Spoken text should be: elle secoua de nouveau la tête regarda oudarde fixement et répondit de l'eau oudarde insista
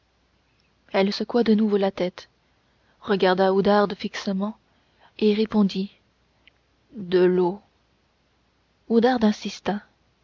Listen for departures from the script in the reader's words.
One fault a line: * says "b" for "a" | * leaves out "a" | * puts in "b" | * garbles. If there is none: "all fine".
all fine